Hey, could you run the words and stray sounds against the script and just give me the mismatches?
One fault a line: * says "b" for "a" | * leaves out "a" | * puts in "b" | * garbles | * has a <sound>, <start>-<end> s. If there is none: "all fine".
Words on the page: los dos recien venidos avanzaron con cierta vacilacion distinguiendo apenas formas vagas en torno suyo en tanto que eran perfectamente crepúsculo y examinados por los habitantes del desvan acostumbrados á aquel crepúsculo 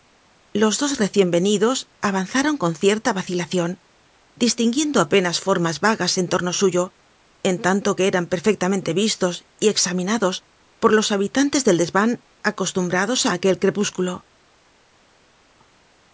* says "vistos" for "crepúsculo"